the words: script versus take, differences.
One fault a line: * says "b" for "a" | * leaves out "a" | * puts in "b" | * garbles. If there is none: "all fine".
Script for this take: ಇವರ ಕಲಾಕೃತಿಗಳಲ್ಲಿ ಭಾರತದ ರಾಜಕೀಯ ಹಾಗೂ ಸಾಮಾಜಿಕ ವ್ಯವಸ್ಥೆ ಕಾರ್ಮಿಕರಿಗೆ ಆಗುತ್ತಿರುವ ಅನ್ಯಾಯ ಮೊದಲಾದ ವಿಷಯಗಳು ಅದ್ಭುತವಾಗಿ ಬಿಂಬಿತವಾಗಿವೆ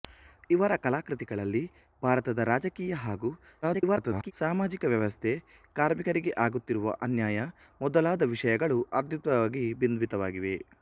* garbles